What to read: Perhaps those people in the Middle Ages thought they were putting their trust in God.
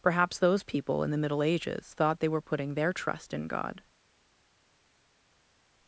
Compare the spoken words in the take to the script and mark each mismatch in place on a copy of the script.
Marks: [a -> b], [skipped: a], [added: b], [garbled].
Perhaps those people in the Middle Ages thought they were putting their trust in God.